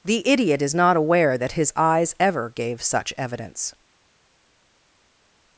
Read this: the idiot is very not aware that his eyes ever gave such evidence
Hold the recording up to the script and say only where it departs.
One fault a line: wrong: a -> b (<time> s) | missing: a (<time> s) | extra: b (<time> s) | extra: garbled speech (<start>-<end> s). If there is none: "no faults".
missing: very (0.7 s)